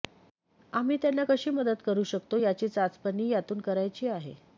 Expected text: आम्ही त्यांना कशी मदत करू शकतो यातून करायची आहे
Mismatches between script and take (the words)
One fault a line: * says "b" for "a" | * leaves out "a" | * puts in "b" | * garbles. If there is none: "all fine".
* puts in "याची चाचपणी"